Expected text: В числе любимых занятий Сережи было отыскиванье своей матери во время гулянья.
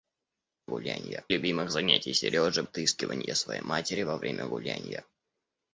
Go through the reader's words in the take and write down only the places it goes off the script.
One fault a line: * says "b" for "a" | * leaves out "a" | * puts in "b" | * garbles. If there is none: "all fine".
* says "гулянья" for "числе"
* leaves out "было"